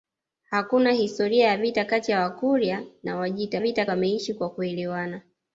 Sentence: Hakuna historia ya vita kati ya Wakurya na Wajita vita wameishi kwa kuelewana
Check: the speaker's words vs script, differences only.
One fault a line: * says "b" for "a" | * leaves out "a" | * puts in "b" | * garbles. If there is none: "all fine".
all fine